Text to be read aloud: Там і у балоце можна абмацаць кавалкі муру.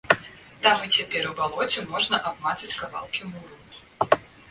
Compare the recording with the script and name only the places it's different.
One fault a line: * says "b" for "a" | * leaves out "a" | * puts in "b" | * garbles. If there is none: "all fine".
* puts in "цяпер"